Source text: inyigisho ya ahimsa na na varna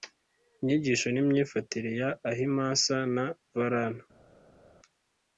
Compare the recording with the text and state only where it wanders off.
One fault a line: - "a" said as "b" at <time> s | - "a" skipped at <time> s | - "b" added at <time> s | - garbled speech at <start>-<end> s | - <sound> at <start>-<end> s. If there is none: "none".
- "n'imyifatire" added at 1.1 s
- "na" skipped at 3.2 s